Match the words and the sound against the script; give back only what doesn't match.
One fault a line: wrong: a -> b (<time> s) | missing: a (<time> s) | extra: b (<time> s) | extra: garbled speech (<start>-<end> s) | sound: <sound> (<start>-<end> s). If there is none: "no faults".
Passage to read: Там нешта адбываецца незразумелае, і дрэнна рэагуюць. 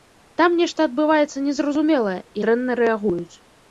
no faults